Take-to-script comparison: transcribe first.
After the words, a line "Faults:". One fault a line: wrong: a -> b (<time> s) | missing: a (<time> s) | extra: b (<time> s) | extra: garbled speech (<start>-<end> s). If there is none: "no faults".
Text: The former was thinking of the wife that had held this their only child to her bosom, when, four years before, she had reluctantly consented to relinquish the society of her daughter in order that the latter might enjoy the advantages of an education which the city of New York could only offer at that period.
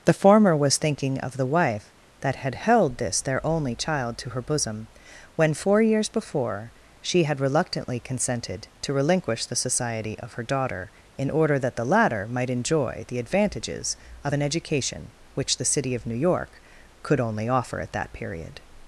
The former was thinking of the wife that had held this their only child to her bosom, when, four years before, she had reluctantly consented to relinquish the society of her daughter in order that the latter might enjoy the advantages of an education which the city of New York could only offer at that period.
Faults:
no faults